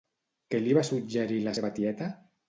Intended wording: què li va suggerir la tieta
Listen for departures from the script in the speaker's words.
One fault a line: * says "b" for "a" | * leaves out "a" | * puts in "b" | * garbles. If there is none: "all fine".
* puts in "seva"